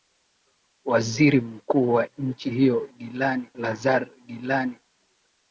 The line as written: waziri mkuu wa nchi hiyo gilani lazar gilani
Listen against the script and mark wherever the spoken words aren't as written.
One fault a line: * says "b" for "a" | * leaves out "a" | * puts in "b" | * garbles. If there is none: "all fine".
all fine